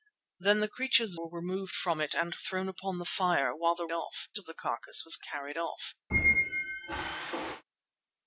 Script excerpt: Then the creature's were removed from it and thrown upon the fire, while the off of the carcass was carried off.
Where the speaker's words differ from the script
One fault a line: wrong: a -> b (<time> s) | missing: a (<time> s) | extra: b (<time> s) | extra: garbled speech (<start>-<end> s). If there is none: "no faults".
no faults